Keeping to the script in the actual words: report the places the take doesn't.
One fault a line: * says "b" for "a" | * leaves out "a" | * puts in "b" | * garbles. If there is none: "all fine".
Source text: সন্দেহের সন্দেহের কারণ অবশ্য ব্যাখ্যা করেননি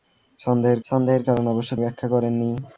all fine